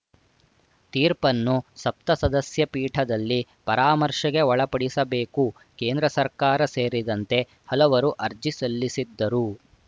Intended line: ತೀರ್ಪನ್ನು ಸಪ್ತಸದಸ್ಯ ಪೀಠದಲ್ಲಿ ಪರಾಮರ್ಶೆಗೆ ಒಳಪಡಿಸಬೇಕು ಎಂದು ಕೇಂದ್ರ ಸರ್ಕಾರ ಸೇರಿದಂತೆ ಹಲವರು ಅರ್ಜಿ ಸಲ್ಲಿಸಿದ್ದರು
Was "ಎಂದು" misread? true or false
true